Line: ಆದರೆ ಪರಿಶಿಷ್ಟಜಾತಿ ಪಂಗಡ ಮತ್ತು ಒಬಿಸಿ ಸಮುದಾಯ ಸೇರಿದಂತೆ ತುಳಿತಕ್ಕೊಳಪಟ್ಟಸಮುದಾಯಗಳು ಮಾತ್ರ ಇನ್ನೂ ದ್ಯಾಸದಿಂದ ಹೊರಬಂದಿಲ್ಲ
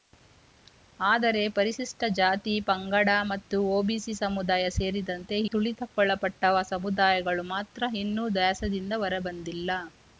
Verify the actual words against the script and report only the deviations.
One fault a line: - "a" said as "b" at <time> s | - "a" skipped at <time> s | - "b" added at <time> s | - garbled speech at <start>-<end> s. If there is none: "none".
none